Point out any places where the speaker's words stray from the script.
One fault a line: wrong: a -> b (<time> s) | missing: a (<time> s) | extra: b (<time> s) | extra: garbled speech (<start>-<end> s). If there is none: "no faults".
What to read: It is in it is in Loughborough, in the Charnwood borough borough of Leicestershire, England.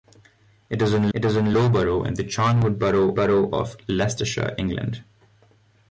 no faults